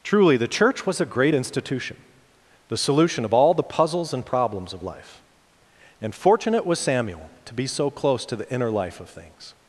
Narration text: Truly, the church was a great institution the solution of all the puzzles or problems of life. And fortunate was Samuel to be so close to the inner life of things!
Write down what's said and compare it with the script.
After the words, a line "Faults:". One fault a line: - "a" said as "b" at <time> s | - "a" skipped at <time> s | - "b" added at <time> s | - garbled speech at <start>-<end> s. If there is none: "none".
Truly, the church was a great institution the solution of all the puzzles and problems of life. And fortunate was Samuel to be so close to the inner life of things!
Faults:
- "or" said as "and" at 4.1 s